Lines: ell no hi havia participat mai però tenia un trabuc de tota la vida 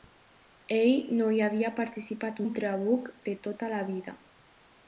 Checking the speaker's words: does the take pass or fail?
fail